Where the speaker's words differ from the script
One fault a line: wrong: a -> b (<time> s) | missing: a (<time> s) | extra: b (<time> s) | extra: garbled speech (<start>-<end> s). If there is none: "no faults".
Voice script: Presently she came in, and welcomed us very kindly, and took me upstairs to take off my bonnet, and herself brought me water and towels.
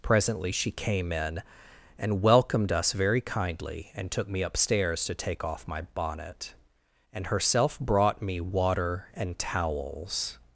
no faults